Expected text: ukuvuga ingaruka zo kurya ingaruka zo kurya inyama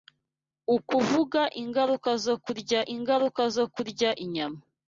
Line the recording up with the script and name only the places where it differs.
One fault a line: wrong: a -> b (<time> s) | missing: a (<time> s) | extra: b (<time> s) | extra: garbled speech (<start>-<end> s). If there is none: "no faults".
no faults